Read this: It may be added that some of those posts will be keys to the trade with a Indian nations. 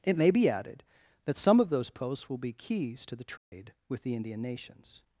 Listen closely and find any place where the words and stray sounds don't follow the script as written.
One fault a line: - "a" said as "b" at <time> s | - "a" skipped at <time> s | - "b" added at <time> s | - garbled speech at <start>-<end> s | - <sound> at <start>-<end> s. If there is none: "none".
- dropout at 3.4-3.5 s
- "a" said as "the" at 4.0 s